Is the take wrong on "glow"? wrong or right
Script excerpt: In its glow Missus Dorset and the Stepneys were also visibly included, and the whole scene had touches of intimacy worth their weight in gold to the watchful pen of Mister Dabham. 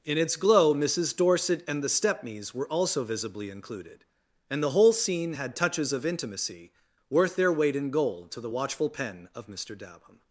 right